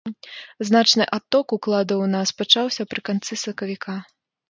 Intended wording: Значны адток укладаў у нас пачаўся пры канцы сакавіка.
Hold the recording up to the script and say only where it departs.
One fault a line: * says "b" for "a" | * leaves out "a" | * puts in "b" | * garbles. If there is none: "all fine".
all fine